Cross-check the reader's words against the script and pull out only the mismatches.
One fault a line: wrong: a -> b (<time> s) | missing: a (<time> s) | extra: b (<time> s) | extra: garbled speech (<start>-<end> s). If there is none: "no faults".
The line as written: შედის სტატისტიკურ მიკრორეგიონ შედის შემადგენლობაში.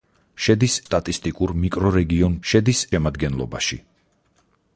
no faults